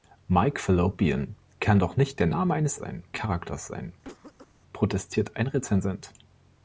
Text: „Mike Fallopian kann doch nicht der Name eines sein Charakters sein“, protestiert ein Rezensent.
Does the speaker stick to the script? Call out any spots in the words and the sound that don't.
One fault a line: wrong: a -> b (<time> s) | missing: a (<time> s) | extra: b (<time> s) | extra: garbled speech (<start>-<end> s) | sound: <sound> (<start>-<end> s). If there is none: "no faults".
sound: cough (4.0-4.5 s)